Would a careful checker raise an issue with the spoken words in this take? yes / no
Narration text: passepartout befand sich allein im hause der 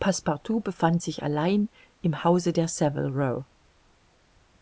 no